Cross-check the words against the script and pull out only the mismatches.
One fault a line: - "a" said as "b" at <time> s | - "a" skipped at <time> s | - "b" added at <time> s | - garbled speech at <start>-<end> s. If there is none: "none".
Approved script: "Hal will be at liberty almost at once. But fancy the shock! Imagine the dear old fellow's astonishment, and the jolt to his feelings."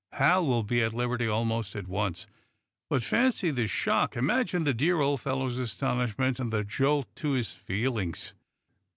none